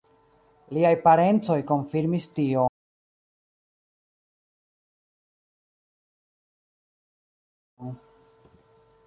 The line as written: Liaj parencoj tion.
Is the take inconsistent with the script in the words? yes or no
yes